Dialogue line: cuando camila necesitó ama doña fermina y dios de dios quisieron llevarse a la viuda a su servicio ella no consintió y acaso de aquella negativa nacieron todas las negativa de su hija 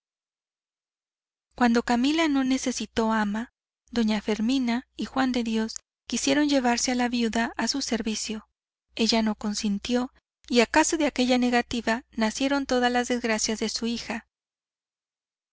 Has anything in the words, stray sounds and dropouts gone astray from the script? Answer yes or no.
yes